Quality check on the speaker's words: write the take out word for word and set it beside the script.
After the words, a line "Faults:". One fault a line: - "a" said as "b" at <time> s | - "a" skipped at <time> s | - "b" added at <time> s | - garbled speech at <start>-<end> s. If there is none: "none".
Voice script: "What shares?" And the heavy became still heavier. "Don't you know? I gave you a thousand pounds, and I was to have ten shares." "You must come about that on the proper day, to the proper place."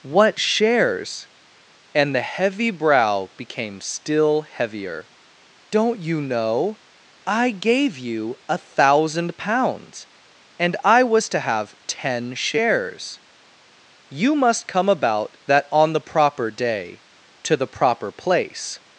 "What shares?" And the heavy brow became still heavier. "Don't you know? I gave you a thousand pounds, and I was to have ten shares." "You must come about that on the proper day, to the proper place."
Faults:
- "brow" added at 2.7 s